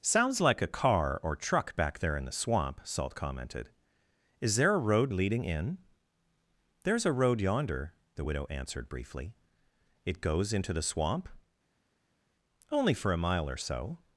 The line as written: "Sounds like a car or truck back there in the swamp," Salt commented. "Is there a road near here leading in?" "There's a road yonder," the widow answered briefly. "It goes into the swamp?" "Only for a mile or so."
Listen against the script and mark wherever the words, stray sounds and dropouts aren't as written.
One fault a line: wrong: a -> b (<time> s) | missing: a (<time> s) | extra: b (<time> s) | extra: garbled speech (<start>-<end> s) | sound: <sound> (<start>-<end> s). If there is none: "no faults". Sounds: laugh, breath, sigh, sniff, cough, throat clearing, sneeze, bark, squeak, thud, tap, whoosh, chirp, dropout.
missing: near here (5.1 s)